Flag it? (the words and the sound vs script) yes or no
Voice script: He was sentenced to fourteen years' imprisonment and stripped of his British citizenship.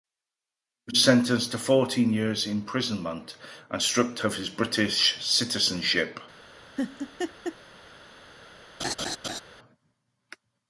yes